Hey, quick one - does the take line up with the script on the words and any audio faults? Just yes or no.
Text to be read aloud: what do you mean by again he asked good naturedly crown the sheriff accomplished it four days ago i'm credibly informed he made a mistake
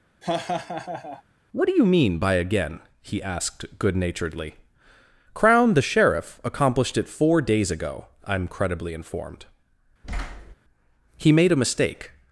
no